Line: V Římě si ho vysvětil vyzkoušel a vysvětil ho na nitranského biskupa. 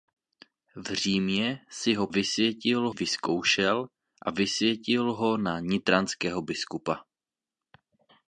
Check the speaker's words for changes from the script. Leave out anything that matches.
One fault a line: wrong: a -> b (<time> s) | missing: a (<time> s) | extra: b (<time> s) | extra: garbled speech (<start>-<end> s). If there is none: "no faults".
no faults